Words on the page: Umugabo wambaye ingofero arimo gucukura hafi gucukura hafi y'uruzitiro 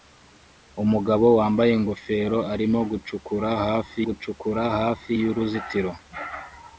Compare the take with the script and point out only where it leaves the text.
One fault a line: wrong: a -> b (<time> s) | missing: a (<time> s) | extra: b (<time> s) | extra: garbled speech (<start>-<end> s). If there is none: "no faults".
no faults